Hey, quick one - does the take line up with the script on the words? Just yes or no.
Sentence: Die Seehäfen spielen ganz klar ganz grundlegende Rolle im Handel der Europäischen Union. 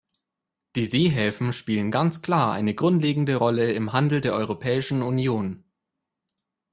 no